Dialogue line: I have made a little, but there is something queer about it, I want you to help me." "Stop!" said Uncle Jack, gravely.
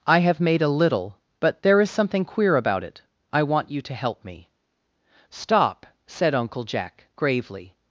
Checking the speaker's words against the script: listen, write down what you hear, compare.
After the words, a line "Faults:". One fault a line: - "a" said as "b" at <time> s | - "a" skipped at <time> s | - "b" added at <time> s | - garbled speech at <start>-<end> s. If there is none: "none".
I have made a little, but there is something queer about it, I want you to help me." "Stop!" said Uncle Jack, gravely.
Faults:
none